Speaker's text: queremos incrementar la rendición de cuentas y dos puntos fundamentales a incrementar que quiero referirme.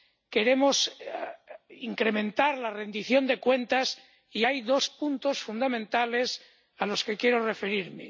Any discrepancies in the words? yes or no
yes